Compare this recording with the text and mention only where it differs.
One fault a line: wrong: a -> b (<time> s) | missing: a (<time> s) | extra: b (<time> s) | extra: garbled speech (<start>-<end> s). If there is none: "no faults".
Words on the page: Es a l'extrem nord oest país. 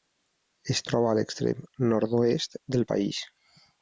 extra: troba (0.9 s)
extra: del (2.8 s)